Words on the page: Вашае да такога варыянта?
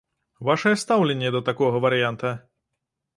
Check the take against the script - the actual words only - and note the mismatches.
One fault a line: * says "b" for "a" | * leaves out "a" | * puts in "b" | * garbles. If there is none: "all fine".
* puts in "стаўленне"